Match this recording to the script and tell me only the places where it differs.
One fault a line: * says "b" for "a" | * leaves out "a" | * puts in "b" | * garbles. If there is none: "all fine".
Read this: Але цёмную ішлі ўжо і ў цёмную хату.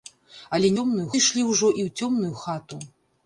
all fine